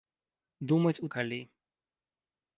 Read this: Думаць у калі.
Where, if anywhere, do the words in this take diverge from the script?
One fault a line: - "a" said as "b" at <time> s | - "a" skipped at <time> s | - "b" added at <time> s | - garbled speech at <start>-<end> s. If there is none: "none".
none